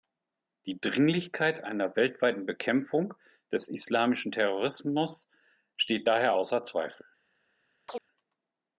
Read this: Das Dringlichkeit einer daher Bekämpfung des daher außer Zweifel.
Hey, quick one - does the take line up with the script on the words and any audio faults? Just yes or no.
no